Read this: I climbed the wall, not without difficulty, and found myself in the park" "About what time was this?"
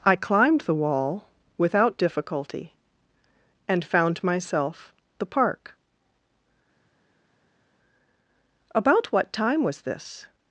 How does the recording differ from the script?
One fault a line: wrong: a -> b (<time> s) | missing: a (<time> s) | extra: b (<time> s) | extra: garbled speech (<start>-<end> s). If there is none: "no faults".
missing: not (1.3 s)
missing: in (4.9 s)